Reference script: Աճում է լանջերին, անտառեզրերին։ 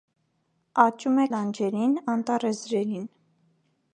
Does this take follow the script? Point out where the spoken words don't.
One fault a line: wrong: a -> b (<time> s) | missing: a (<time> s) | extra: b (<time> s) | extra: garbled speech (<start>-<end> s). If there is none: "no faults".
no faults